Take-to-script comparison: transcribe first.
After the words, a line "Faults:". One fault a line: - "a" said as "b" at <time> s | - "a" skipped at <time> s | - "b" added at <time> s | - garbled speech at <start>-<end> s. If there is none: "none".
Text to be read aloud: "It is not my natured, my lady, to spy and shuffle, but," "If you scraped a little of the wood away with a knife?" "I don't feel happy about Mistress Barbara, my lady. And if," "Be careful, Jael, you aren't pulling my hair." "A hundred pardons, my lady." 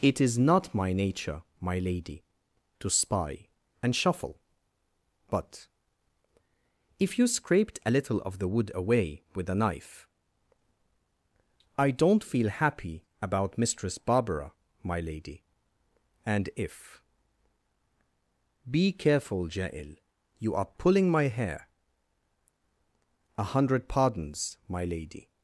"It is not my nature, my lady, to spy and shuffle, but," "If you scraped a little of the wood away with a knife?" "I don't feel happy about Mistress Barbara, my lady. And if," "Be careful, Jael, you are pulling my hair." "A hundred pardons, my lady."
Faults:
- "natured" said as "nature" at 0.9 s
- "aren't" said as "are" at 20.6 s